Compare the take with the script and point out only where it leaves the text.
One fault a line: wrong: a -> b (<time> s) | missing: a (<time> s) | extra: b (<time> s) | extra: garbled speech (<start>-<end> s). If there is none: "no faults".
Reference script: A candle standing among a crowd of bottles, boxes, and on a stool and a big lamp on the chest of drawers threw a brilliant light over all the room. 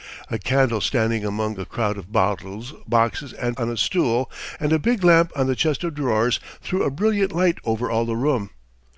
no faults